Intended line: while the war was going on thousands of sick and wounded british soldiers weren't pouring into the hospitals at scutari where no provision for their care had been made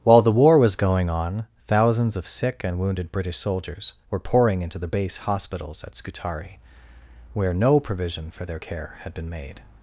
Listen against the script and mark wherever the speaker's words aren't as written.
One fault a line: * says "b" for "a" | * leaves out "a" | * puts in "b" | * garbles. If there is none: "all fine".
* says "were" for "weren't"
* puts in "base"